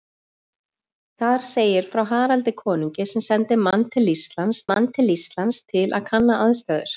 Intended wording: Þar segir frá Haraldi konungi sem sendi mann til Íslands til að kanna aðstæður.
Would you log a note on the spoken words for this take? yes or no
yes